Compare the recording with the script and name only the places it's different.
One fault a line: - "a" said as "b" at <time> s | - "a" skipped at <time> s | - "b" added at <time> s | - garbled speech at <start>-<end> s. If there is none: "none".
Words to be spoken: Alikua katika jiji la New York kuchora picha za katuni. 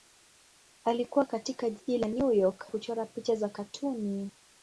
none